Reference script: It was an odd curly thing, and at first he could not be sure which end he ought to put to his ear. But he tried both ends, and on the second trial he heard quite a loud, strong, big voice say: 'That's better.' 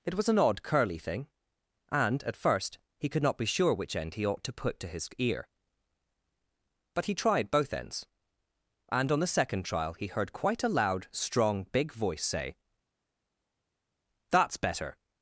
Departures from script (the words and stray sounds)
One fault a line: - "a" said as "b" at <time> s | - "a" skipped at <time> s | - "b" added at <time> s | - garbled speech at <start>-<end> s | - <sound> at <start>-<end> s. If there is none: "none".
none